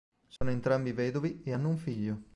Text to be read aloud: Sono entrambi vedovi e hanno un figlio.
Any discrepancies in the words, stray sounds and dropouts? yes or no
yes